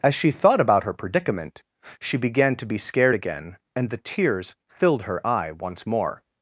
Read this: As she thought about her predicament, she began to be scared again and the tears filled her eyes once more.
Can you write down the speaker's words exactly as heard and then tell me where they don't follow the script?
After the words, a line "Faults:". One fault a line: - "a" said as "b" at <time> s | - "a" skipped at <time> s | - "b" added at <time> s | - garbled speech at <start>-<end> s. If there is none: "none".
As she thought about her predicament, she began to be scared again and the tears filled her eye once more.
Faults:
- "eyes" said as "eye" at 5.3 s